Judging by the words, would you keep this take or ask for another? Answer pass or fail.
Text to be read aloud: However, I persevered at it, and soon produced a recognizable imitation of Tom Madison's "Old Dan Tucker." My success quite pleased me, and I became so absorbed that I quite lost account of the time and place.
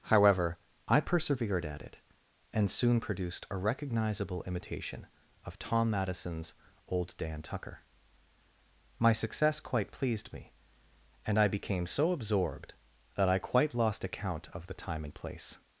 pass